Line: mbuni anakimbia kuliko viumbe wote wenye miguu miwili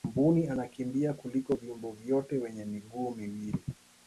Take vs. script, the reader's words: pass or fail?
pass